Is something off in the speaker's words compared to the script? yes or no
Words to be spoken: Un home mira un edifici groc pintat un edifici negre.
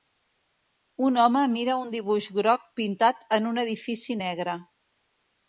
yes